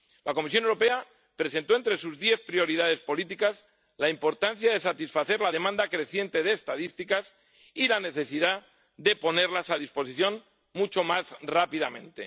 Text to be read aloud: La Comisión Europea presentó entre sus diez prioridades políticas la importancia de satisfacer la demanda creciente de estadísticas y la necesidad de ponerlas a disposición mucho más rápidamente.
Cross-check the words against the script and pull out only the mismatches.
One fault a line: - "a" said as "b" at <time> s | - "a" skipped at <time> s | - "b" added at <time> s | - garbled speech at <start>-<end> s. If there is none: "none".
none